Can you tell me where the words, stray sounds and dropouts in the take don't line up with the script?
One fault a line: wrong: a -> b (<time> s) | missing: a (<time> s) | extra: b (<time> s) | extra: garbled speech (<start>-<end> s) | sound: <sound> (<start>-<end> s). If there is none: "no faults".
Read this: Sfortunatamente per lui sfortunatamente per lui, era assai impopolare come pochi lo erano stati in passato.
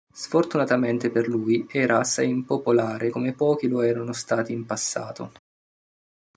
missing: sfortunatamente per lui (1.7 s)